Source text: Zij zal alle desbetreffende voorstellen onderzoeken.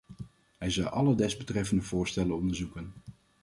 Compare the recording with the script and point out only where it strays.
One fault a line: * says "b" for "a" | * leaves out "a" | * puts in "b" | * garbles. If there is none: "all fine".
* says "Hij" for "Zij"